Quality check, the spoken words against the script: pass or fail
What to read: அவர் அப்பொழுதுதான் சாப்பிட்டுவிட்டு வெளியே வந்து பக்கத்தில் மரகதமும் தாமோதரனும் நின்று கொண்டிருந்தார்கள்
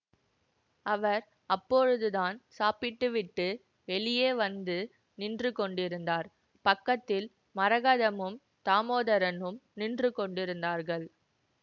fail